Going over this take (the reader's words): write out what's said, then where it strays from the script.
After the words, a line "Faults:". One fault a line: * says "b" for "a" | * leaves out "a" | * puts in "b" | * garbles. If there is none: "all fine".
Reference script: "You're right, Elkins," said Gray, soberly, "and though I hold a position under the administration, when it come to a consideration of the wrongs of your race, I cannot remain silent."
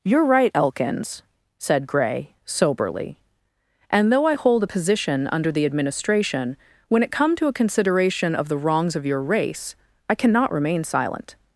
"You're right, Elkins," said Gray, soberly, "and though I hold a position under the administration, when it come to a consideration of the wrongs of your race, I cannot remain silent."
Faults:
all fine